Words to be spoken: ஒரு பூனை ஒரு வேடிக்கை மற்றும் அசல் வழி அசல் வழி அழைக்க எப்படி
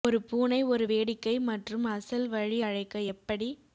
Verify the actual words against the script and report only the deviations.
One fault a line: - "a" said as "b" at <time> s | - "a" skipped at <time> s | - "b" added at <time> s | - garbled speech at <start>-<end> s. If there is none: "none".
- "அசல் வழி" skipped at 2.6 s